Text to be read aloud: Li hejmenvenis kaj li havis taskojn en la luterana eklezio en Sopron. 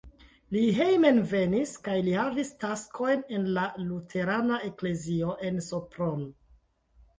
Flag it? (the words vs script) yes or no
no